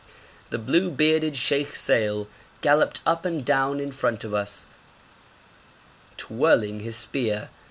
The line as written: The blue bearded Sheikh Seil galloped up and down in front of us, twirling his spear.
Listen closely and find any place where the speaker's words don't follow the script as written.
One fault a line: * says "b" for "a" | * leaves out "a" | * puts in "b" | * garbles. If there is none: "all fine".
all fine